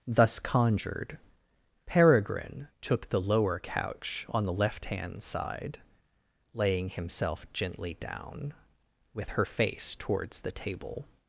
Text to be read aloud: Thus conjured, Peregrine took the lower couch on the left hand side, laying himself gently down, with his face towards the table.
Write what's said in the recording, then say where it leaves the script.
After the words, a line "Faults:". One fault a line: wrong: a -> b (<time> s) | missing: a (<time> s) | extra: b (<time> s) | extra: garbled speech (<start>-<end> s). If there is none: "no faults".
Thus conjured, Peregrine took the lower couch on the left hand side, laying himself gently down, with her face towards the table.
Faults:
wrong: his -> her (9.3 s)